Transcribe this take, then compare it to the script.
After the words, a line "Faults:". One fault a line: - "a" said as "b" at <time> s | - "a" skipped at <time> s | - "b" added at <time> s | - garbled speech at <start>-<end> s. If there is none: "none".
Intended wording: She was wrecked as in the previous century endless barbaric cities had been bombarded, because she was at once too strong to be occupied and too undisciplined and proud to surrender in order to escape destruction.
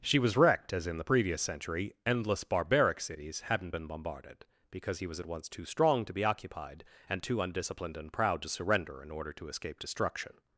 She was wrecked as in the previous century endless barbaric cities hadn't been bombarded, because he was at once too strong to be occupied and too undisciplined and proud to surrender in order to escape destruction.
Faults:
- "had" said as "hadn't" at 3.4 s
- "she" said as "he" at 5.0 s